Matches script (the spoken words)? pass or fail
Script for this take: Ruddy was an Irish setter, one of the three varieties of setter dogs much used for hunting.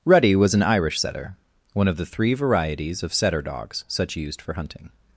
fail